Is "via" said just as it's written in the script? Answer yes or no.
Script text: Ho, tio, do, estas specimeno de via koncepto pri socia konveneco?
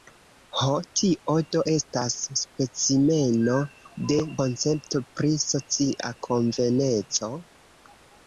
no